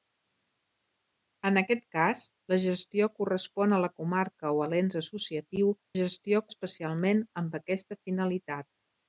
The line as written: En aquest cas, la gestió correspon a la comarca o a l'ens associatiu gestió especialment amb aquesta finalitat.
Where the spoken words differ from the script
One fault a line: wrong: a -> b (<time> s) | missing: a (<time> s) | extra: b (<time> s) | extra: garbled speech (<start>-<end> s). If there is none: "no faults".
no faults